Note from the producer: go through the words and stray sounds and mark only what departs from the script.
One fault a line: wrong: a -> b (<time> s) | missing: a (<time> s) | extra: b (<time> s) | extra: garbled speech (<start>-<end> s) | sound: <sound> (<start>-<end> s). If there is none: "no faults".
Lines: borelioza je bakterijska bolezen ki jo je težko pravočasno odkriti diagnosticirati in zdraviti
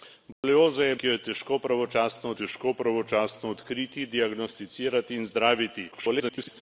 sound: dropout (0.3-0.4 s)
missing: bakterijska bolezen (0.9 s)
extra: težko pravočasno (2.4 s)
extra: garbled speech (5.9-6.6 s)